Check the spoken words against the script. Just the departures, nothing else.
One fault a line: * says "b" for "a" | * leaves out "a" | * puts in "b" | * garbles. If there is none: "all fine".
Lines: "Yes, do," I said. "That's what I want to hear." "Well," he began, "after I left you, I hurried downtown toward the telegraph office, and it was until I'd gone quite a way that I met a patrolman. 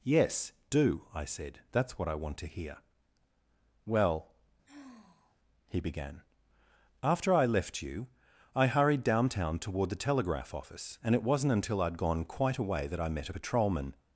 * says "wasn't" for "was"